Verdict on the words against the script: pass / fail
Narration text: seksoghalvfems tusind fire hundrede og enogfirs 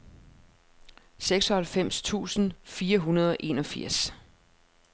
pass